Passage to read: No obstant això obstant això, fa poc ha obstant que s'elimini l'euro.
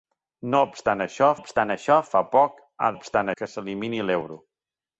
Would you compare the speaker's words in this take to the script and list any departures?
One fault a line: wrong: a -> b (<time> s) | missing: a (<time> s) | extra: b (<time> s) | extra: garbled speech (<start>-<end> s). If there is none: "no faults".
no faults